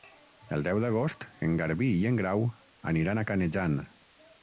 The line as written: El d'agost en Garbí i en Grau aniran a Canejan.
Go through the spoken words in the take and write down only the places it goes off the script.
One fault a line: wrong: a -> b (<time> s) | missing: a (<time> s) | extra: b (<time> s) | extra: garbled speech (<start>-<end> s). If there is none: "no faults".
extra: deu (0.7 s)